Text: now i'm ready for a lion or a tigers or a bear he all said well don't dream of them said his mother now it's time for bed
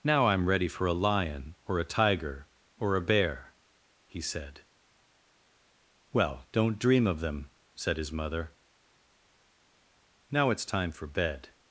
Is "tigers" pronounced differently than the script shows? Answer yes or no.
yes